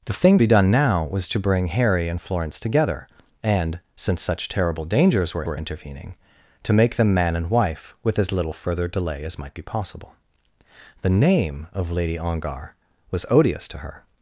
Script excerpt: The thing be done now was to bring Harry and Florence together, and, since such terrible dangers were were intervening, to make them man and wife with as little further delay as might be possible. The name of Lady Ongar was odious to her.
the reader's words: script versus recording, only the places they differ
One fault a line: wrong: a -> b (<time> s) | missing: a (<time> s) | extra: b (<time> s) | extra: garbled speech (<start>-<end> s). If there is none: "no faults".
no faults